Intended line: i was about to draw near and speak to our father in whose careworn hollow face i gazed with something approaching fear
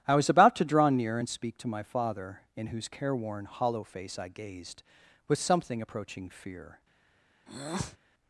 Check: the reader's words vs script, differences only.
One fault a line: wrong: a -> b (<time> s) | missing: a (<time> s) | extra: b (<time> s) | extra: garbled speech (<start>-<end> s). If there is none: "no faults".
wrong: our -> my (1.7 s)